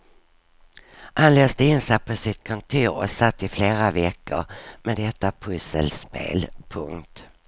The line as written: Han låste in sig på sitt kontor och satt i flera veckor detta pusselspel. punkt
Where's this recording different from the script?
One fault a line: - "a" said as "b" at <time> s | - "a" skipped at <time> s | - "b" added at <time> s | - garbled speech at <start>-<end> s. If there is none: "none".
- "med" added at 4.8 s